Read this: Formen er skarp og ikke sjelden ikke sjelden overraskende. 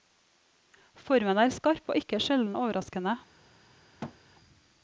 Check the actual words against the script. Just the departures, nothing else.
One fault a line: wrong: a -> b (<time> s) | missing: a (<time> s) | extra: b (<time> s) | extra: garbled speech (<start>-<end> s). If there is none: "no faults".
missing: ikke sjelden (2.6 s)